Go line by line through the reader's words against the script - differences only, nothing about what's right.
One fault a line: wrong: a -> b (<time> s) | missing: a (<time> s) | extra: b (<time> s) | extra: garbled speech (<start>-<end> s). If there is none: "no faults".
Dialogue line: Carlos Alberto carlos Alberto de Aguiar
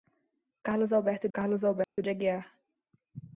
no faults